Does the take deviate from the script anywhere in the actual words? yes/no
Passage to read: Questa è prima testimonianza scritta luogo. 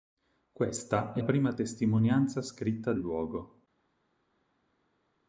no